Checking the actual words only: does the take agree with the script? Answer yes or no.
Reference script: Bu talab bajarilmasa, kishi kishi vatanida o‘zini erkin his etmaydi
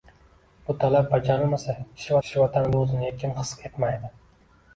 yes